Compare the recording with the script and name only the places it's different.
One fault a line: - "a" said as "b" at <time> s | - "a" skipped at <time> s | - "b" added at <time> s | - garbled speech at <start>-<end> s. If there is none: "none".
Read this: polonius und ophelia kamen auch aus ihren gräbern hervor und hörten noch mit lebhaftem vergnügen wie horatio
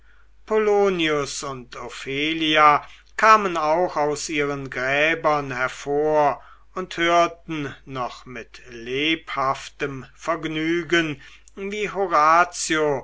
none